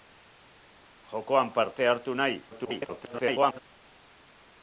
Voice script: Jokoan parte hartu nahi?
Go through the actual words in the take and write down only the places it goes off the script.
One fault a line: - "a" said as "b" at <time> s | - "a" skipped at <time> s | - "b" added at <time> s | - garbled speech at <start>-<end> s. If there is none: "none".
- garbled speech at 2.5-3.6 s